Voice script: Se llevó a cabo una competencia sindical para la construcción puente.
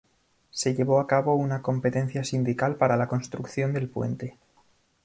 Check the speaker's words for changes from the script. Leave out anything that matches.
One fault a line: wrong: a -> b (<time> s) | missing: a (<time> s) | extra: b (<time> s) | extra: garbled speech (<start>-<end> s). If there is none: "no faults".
extra: del (3.7 s)